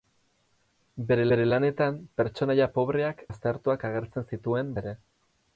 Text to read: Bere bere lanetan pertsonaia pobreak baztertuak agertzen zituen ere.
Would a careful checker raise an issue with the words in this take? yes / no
no